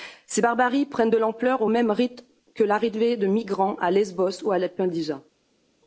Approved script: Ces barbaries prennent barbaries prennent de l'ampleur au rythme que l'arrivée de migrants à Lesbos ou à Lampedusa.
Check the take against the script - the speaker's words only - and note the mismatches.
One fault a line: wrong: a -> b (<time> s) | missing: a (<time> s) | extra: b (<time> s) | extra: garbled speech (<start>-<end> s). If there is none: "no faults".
missing: barbaries prennent (1.1 s)
extra: même (1.7 s)